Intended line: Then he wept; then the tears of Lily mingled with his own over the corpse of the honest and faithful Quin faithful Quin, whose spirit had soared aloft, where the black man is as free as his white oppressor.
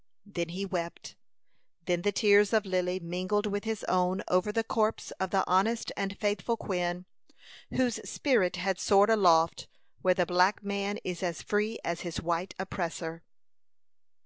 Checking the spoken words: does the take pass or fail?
fail